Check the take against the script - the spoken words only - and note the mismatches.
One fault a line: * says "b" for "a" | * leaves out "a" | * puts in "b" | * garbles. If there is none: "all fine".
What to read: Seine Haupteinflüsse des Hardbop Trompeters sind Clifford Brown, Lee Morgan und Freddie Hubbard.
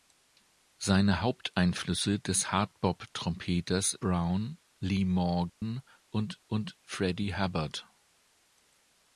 * leaves out "sind Clifford"
* puts in "und"